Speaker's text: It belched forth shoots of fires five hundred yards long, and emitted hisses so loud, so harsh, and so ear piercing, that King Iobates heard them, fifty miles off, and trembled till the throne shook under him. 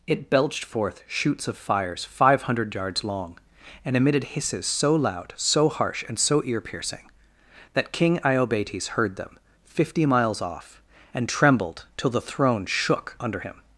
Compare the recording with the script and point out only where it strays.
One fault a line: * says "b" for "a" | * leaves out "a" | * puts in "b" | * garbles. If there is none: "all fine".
all fine